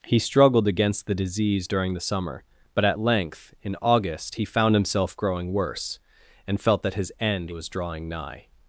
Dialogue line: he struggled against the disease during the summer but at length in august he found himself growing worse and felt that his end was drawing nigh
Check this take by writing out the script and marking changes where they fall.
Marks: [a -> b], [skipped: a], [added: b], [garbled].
he struggled against the disease during the summer but at length in august he found himself growing worse and felt that his end was drawing nigh